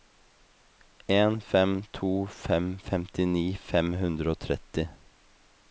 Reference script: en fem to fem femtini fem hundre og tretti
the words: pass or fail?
pass